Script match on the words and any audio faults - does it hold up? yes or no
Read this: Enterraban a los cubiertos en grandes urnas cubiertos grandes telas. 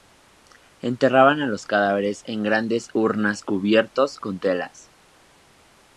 no